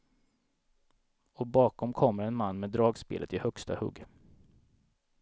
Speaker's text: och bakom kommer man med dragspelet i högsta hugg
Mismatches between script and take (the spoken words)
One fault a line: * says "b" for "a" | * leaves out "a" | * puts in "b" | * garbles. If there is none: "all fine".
* puts in "en"